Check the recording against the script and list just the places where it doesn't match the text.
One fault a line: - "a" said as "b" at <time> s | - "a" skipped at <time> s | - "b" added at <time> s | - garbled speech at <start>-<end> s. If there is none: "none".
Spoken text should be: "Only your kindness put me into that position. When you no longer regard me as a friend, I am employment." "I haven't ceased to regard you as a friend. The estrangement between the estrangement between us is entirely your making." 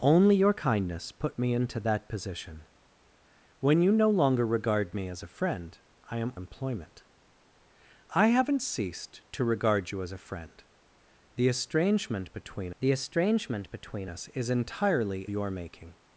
none